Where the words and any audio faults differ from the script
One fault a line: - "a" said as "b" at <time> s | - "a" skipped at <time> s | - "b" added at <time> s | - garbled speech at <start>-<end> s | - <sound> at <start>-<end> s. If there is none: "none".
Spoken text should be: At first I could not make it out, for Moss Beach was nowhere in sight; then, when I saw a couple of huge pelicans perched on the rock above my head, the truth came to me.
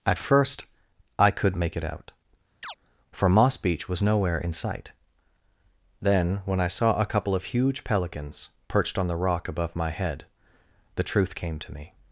- "not" skipped at 1.6 s
- chirp at 2.6-2.7 s